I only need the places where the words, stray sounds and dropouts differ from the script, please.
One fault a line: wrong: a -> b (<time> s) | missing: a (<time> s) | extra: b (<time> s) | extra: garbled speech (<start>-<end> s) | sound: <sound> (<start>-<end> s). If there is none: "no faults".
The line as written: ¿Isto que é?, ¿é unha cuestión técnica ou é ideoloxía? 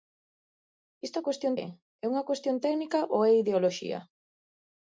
wrong: que -> cuestión (1.3 s)